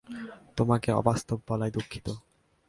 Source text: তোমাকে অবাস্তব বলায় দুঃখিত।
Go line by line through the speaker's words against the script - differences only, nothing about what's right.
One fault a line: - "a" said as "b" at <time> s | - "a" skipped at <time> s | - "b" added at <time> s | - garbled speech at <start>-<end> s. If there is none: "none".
none